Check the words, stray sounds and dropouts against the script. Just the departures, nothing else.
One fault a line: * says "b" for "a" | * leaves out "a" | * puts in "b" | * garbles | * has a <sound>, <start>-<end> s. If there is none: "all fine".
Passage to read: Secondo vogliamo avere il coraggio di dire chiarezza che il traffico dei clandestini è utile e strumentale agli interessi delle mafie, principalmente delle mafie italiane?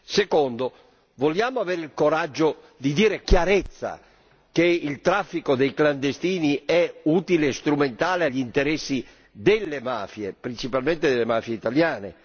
all fine